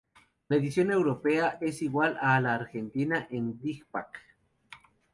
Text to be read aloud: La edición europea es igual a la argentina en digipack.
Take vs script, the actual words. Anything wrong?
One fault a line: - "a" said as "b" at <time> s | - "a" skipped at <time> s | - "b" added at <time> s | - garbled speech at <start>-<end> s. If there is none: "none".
none